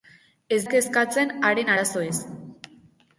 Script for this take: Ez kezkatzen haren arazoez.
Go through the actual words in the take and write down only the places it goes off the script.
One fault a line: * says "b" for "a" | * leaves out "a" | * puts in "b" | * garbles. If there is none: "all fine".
all fine